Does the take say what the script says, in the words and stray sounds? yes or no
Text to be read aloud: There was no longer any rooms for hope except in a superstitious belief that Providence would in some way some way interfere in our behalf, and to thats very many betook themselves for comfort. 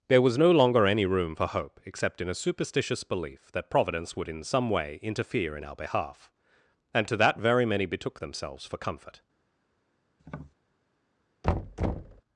no